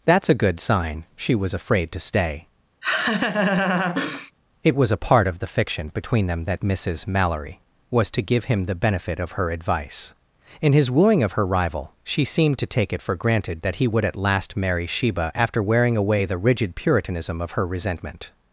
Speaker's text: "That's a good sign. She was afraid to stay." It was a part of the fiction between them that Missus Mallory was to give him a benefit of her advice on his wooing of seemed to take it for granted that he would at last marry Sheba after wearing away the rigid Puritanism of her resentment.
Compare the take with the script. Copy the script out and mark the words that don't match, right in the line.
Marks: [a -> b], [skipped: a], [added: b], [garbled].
"That's a good sign. She was afraid to stay." It was a part of the fiction between them that Missus Mallory was to give him [a -> the] benefit of her advice [on -> in] his wooing of [added: her rival She] seemed to take it for granted that he would at last marry Sheba after wearing away the rigid Puritanism of her resentment.